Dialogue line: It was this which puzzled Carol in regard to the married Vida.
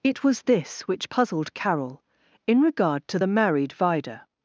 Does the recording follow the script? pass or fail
pass